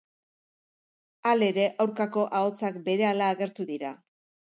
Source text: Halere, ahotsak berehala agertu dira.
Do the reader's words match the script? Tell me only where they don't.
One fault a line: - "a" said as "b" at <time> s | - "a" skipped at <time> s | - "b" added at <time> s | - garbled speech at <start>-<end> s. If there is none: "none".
- "aurkako" added at 1.8 s